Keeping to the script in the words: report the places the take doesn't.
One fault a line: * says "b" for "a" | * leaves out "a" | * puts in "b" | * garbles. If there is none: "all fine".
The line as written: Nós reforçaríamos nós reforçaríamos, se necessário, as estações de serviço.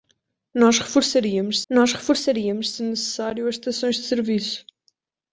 all fine